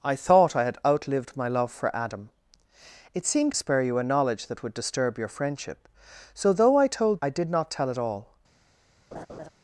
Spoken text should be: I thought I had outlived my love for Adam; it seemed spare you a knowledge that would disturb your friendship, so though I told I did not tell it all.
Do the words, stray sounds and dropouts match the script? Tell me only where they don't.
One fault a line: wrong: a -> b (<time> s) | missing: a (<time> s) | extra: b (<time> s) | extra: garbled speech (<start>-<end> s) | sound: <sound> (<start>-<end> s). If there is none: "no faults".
sound: laugh (9.1-9.5 s)